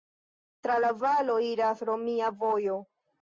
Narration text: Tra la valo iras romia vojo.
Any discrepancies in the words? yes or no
no